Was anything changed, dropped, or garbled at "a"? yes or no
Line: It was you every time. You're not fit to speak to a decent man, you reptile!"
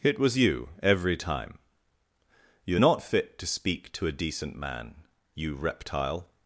no